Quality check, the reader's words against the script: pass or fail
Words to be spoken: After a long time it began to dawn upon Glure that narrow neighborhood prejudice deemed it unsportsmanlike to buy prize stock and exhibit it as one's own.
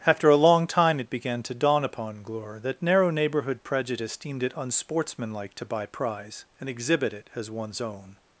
fail